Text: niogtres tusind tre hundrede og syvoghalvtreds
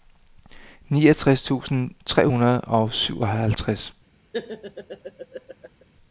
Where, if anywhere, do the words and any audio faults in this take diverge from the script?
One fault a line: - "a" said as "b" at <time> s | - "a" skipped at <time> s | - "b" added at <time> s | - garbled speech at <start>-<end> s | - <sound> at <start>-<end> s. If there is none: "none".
- laugh at 4.3-5.8 s